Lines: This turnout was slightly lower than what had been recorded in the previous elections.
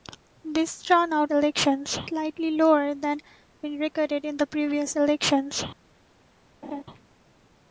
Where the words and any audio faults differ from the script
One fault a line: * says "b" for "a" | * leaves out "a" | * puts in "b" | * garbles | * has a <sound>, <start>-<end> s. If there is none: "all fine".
* says "elections" for "was"
* leaves out "what had"
* has a laugh, 6.6-6.8 s